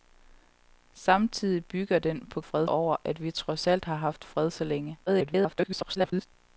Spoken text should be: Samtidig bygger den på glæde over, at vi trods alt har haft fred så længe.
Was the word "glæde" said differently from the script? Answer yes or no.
yes